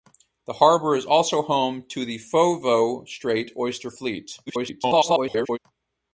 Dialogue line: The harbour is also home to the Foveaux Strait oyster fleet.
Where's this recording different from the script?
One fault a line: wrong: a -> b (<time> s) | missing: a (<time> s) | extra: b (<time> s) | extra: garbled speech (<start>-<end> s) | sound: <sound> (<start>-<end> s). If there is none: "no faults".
extra: garbled speech (4.5-5.6 s)